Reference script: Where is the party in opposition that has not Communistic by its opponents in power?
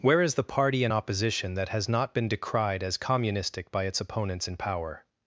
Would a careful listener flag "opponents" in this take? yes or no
no